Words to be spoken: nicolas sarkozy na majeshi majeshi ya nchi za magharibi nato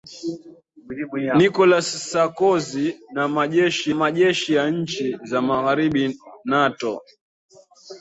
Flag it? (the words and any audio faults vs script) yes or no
no